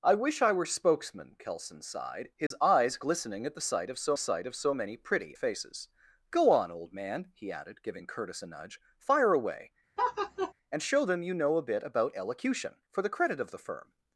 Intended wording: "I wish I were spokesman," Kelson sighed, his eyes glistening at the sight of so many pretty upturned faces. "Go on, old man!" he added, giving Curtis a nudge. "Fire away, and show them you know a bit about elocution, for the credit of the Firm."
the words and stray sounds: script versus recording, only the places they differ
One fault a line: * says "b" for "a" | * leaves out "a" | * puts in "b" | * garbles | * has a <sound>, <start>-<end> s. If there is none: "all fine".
* has a dropout, 2.5-2.5 s
* puts in "sight of so"
* leaves out "upturned"
* has a laugh, 10.0-10.5 s